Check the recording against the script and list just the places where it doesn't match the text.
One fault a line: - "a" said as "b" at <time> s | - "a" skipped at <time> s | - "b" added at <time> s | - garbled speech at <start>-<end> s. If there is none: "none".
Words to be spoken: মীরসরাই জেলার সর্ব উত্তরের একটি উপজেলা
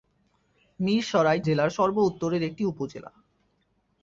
none